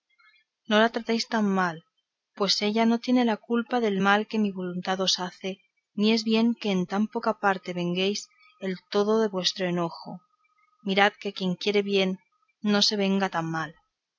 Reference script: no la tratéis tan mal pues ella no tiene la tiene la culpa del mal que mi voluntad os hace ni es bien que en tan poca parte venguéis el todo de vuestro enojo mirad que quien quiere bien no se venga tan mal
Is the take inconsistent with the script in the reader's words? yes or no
yes